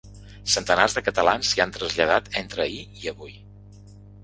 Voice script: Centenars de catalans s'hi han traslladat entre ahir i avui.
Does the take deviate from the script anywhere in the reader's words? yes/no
no